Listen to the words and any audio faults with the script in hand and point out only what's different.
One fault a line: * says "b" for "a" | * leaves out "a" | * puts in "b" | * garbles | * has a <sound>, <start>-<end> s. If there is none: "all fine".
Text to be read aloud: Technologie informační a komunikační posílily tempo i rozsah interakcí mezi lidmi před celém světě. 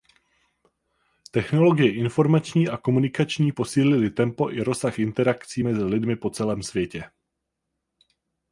* says "po" for "před"